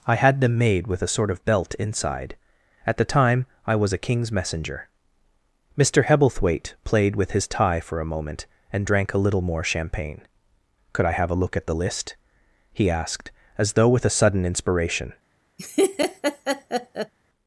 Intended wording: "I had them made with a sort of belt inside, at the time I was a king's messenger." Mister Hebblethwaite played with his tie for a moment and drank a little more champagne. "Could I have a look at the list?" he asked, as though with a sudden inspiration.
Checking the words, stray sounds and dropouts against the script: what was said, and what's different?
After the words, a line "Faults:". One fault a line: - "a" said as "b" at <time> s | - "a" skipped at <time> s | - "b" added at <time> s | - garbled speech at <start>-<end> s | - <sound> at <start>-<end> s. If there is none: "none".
"I had them made with a sort of belt inside, at the time I was a king's messenger." Mister Hebblethwaite played with his tie for a moment and drank a little more champagne. "Could I have a look at the list?" he asked, as though with a sudden inspiration.
Faults:
- laugh at 15.6-17.1 s